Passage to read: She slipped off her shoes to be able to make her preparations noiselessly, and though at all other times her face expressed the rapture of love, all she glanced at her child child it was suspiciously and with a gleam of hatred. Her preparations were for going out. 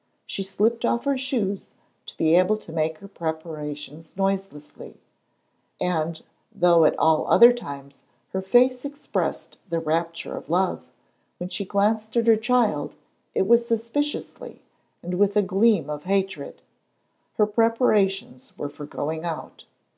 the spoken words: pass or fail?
fail